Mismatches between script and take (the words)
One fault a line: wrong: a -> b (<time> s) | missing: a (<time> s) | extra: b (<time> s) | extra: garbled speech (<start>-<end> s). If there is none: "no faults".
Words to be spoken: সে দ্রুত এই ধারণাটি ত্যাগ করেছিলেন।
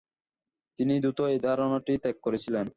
wrong: সে -> তিনি (0.8 s)